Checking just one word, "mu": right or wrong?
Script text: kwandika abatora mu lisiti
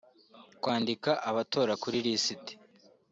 wrong